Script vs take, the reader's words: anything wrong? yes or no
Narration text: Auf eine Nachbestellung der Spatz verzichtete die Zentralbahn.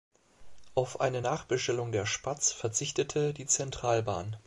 no